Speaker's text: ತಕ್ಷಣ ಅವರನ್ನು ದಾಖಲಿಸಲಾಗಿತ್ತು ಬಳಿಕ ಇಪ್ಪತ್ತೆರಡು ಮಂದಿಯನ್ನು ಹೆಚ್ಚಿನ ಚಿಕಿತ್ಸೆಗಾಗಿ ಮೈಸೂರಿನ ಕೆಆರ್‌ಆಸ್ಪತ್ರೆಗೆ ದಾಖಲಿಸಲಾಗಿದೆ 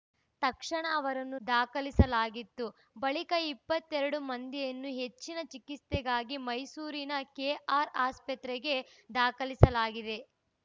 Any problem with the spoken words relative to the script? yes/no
no